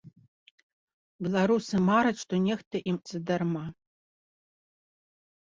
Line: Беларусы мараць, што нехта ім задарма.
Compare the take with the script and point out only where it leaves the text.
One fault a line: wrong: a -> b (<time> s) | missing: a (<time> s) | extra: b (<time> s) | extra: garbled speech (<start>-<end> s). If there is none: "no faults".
no faults